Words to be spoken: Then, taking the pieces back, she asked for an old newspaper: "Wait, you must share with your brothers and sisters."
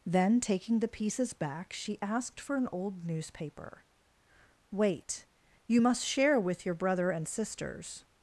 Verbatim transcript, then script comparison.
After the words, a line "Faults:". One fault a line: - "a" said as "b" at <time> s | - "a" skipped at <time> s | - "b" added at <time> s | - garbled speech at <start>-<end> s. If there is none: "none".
Then, taking the pieces back, she asked for an old newspaper: "Wait, you must share with your brother and sisters."
Faults:
- "brothers" said as "brother" at 6.7 s